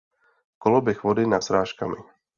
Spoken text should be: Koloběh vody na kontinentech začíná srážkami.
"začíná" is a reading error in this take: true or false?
true